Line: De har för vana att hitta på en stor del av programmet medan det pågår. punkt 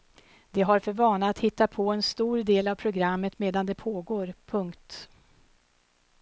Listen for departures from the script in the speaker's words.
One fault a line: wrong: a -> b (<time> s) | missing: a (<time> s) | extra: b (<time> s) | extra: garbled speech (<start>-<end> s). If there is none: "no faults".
no faults